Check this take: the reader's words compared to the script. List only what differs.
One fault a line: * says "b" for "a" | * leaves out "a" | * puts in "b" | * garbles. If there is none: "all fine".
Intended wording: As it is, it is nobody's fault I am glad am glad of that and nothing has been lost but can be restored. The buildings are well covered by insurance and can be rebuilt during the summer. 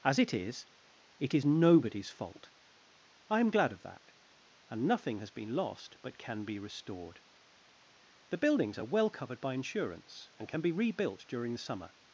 * leaves out "am glad"